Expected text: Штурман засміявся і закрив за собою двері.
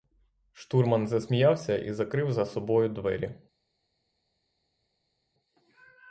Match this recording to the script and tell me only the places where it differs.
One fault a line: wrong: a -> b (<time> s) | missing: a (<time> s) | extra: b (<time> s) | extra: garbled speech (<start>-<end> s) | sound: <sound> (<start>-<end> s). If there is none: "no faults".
no faults